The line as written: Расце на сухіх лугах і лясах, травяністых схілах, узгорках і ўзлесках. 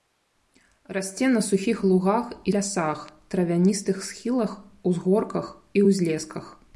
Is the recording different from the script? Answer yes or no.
no